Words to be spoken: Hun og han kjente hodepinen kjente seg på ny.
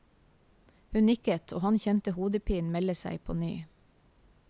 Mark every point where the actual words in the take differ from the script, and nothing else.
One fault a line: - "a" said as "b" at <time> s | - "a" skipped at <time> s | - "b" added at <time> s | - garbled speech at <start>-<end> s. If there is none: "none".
- "nikket" added at 1.1 s
- "kjente" said as "melde" at 2.7 s